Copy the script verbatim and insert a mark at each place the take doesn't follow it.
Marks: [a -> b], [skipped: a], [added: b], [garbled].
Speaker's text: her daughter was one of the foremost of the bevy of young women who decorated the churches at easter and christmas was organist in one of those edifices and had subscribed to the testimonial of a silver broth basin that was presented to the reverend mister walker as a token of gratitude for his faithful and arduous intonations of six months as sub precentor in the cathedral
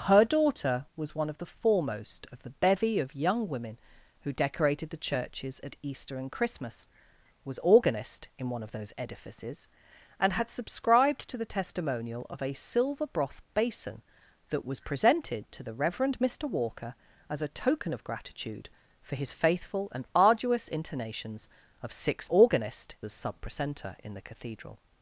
her daughter was one of the foremost of the bevy of young women who decorated the churches at easter and christmas was organist in one of those edifices and had subscribed to the testimonial of a silver broth basin that was presented to the reverend mister walker as a token of gratitude for his faithful and arduous intonations of six [months -> organist] as sub precentor in the cathedral